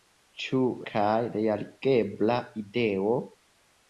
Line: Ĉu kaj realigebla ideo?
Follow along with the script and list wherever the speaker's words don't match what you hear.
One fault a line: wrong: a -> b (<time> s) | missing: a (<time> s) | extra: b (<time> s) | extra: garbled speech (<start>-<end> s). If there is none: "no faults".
no faults